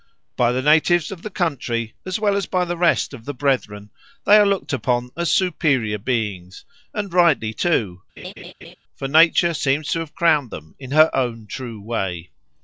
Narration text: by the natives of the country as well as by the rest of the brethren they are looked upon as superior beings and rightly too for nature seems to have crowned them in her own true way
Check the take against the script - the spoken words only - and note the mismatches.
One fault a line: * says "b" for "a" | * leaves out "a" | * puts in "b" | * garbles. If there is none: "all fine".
all fine